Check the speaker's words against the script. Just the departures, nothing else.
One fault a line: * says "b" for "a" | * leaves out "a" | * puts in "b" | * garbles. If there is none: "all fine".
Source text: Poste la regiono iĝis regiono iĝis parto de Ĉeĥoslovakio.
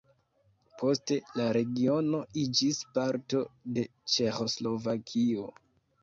* leaves out "regiono iĝis"